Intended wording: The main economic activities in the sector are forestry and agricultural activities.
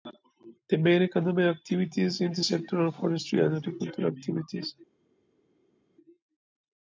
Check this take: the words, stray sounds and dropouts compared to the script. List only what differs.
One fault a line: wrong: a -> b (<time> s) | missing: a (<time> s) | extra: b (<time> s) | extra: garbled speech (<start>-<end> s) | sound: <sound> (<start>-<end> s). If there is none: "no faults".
no faults